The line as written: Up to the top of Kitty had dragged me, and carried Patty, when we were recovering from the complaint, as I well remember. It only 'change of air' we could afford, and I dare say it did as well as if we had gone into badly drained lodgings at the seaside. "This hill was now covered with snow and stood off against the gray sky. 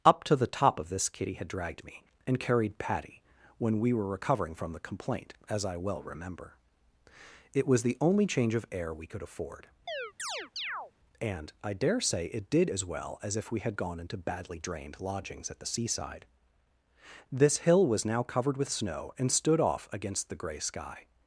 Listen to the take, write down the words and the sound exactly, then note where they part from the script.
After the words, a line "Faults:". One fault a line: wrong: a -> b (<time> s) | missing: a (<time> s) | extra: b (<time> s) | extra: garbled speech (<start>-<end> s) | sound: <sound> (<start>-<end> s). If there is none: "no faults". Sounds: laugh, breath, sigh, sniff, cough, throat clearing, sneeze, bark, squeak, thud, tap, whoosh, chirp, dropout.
Up to the top of this Kitty had dragged me, and carried Patty, when we were recovering from the complaint, as I well remember. It was the only 'change of air' we could afford, and I dare say it did as well as if we had gone into badly drained lodgings at the seaside. "This hill was now covered with snow and stood off against the gray sky.
Faults:
extra: this (0.9 s)
extra: was the (7.7 s)
sound: chirp (9.9-10.9 s)